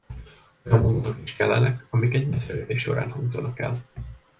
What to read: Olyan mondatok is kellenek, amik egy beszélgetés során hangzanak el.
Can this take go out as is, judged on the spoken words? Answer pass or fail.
pass